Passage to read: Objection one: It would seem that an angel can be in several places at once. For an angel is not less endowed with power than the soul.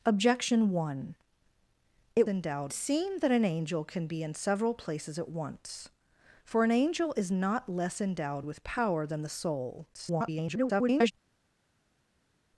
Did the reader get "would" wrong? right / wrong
wrong